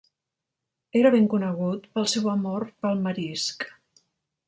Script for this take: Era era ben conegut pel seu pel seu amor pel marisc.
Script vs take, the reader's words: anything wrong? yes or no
yes